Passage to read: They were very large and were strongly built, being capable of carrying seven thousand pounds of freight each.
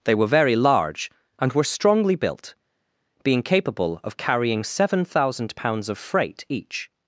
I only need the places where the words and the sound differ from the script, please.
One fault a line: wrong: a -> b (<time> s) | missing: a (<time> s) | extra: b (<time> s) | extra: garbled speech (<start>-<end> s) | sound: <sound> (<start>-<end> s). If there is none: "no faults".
no faults